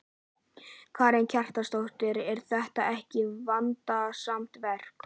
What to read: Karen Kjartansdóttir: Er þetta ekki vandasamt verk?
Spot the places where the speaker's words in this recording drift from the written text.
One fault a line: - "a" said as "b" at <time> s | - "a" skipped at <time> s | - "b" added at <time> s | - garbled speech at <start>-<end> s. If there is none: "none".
none